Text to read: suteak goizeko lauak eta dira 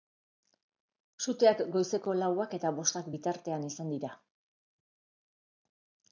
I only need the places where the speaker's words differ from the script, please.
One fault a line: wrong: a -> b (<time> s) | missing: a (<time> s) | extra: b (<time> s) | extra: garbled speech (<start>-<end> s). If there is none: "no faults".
extra: bostak bitartean izan (2.8 s)